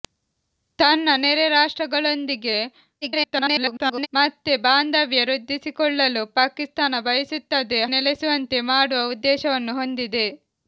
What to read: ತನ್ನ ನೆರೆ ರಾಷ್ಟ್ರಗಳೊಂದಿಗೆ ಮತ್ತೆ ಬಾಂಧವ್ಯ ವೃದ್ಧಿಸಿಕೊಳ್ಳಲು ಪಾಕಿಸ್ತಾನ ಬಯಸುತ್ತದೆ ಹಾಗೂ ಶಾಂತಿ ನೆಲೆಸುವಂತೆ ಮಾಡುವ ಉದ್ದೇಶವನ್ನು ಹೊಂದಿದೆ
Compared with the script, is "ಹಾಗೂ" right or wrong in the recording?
wrong